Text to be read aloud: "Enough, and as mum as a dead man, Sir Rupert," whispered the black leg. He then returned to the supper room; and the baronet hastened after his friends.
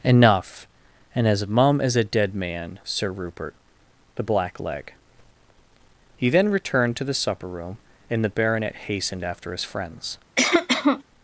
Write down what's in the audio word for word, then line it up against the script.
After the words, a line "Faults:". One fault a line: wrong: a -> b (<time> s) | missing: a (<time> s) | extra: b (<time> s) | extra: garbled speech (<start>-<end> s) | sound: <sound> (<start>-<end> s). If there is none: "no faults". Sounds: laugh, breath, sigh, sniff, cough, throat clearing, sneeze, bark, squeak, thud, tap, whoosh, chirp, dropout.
"Enough, and as mum as a dead man, Sir Rupert," the black leg. He then returned to the supper room; and the baronet hastened after his friends.
Faults:
missing: whispered (3.5 s)
sound: cough (10.4-11.0 s)